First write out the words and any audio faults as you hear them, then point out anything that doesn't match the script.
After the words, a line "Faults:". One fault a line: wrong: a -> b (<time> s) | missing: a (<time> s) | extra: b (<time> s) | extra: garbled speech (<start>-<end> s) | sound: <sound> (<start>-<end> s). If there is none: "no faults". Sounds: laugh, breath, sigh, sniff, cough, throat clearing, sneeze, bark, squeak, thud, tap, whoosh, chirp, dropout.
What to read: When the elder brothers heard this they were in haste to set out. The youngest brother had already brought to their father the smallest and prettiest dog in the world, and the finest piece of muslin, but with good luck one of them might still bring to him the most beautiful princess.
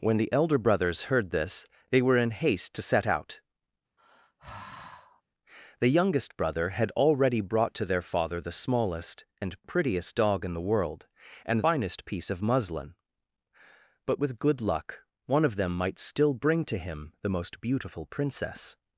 When the elder brothers heard this they were in haste to set out. The youngest brother had already brought to their father the smallest and prettiest dog in the world, and finest piece of muslin, but with good luck one of them might still bring to him the most beautiful princess.
Faults:
sound: sigh (4.0-5.2 s)
missing: the (11.6 s)